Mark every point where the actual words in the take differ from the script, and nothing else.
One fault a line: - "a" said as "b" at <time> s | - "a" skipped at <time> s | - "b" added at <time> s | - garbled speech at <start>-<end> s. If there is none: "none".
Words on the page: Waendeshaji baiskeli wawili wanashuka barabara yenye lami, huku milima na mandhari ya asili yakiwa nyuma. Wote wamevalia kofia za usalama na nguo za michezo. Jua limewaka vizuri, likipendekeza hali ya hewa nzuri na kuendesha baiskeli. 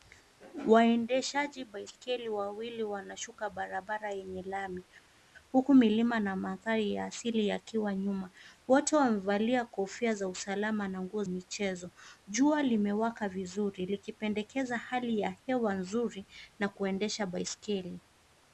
- "za" skipped at 11.2 s